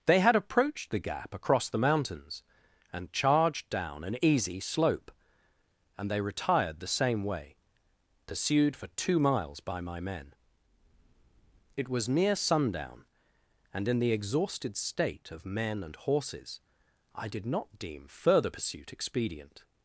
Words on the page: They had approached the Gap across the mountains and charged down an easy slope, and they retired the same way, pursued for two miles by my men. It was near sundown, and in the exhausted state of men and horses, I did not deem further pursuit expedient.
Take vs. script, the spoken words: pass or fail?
pass